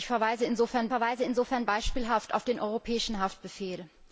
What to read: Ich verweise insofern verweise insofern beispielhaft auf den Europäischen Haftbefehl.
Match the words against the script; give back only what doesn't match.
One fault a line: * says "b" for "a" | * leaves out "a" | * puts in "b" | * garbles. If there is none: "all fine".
all fine